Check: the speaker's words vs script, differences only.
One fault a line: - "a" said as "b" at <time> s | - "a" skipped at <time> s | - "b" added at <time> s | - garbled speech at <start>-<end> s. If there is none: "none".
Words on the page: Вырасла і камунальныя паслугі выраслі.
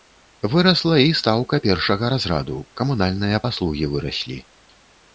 - "стаўка першага разраду" added at 1.2 s